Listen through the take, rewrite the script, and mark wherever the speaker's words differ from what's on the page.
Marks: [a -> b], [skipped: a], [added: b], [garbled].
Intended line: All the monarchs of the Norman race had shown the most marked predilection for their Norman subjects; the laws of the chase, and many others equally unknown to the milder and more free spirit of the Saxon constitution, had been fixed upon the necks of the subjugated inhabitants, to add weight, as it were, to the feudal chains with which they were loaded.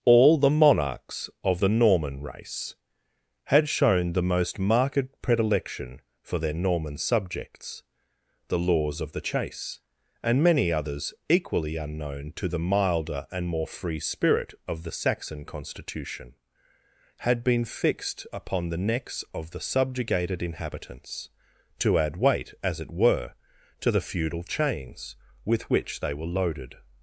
All the monarchs of the Norman race had shown the most marked predilection for their Norman subjects; the laws of the chase, and many others equally unknown to the milder and more free spirit of the Saxon constitution, had been fixed upon the necks of the subjugated inhabitants, to add weight, as it were, to the feudal chains with which they were loaded.